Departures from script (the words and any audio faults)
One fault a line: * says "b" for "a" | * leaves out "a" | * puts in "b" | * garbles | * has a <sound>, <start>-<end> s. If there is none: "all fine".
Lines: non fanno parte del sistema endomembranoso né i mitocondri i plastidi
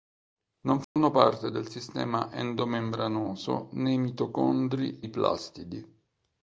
* has a dropout, 0.8-1.0 s